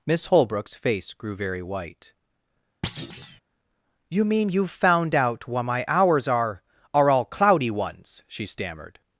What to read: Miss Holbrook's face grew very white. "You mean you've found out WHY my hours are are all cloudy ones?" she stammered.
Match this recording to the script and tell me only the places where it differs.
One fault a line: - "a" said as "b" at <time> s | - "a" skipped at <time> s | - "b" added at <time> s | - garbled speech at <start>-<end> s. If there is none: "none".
none